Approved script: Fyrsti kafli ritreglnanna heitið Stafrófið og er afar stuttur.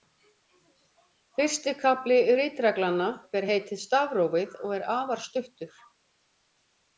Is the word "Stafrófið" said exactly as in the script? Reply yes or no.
yes